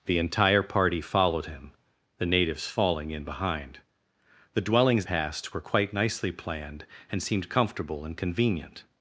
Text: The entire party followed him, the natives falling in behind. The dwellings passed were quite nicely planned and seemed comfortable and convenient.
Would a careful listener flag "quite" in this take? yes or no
no